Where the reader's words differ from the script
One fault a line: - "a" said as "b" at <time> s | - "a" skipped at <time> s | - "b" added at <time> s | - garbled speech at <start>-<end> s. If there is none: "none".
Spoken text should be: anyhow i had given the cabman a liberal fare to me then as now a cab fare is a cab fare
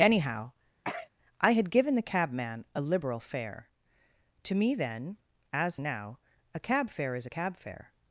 none